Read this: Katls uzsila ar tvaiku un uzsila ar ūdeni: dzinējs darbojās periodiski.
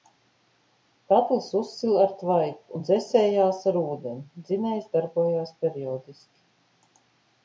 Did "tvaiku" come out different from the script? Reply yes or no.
no